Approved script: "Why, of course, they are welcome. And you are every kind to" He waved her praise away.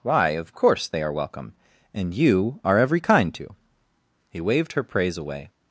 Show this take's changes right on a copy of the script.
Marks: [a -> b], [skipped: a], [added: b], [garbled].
"Why, of course, they are welcome. And you are every kind to" He waved her praise away.